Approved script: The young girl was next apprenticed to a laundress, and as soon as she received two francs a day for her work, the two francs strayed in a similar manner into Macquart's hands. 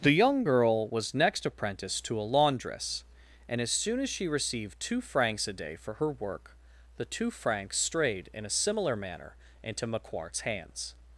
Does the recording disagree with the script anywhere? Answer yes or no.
no